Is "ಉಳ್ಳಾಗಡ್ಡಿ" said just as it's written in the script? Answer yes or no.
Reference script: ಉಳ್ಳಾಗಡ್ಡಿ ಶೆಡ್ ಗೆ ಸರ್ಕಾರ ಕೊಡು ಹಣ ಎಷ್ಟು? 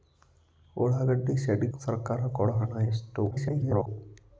yes